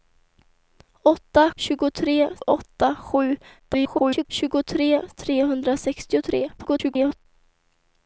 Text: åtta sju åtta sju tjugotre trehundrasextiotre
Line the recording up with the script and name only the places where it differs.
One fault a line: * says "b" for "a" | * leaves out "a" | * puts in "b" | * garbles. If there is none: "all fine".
* says "tjugotre" for "sju"
* garbles
* garbles